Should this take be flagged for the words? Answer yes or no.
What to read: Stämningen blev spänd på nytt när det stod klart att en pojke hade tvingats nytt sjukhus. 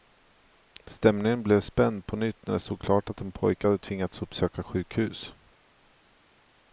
yes